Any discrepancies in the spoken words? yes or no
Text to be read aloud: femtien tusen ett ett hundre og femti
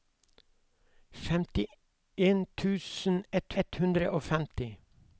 no